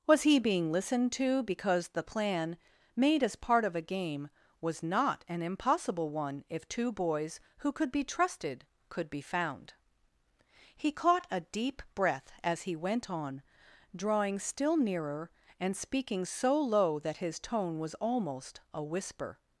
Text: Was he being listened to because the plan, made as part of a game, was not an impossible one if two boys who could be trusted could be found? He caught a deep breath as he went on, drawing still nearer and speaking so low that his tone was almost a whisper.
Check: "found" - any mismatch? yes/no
no